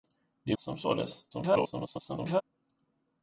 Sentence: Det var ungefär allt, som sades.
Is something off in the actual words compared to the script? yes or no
yes